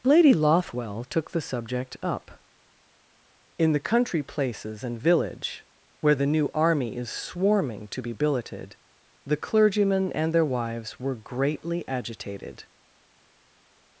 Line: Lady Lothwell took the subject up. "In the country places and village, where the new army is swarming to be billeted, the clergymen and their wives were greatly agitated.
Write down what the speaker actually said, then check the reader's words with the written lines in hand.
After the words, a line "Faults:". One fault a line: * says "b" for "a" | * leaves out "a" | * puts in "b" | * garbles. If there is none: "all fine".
Lady Lothwell took the subject up. "In the country places and village, where the new army is swarming to be billeted, the clergymen and their wives were greatly agitated.
Faults:
all fine